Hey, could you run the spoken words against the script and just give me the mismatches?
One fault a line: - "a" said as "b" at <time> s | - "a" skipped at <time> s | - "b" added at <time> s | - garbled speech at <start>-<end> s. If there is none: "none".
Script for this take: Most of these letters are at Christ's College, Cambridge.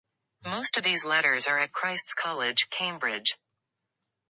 none